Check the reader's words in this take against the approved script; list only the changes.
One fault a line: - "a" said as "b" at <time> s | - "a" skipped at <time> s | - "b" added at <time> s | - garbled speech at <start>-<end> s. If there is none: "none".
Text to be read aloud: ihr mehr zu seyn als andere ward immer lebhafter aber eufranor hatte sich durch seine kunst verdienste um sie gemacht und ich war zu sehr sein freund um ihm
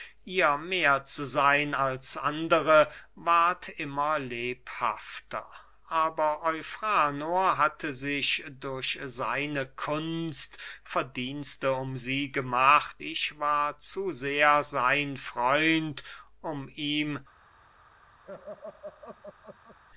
- "und" skipped at 13.0 s